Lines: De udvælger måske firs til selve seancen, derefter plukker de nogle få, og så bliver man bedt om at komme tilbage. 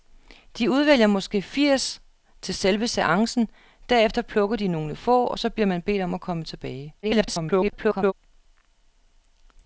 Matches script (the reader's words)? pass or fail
fail